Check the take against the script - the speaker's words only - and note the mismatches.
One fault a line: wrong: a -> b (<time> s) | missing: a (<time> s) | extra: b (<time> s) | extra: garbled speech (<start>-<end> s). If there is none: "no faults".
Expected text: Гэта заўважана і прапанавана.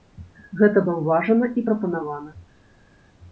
no faults